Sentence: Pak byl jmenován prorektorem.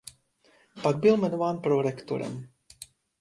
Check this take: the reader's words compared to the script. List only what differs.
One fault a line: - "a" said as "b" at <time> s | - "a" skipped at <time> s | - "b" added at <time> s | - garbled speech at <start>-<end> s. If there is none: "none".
none